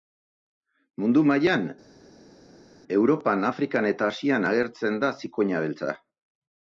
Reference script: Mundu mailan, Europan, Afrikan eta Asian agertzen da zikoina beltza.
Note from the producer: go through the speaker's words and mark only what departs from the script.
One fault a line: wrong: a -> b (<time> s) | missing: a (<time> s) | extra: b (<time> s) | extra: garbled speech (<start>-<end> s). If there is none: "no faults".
no faults